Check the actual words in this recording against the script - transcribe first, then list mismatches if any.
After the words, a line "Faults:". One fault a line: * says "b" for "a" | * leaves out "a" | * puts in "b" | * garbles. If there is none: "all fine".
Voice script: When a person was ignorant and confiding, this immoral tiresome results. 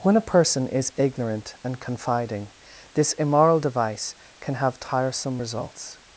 When a person is ignorant and confiding, this immoral device can have tiresome results.
Faults:
* says "is" for "was"
* puts in "device can have"